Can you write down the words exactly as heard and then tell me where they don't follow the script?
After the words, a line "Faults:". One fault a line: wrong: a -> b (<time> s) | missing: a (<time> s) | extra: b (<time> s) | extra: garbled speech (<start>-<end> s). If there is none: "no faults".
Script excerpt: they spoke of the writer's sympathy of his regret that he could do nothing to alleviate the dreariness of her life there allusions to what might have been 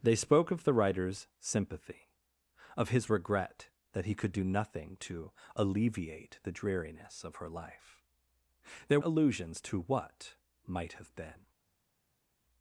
they spoke of the writer's sympathy of his regret that he could do nothing to alleviate the dreariness of her life there allusions to what might have been
Faults:
no faults